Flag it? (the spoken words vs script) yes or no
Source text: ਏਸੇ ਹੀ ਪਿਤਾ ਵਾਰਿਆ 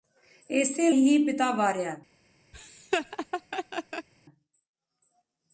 no